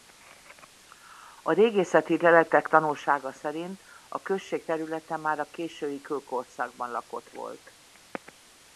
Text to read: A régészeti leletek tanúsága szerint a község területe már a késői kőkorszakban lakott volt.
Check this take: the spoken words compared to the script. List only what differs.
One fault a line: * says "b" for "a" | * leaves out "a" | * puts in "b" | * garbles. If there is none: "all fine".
all fine